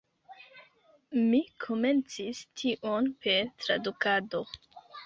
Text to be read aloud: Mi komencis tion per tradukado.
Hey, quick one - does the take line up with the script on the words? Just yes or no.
yes